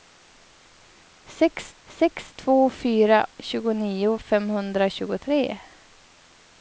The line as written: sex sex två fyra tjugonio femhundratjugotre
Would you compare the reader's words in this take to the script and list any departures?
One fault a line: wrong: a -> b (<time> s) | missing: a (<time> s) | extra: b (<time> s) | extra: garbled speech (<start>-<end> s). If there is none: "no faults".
no faults